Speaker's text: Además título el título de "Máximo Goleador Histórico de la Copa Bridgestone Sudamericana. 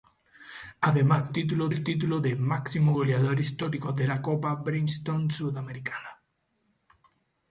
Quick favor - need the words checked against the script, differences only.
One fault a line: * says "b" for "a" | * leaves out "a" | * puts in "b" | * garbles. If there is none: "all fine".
all fine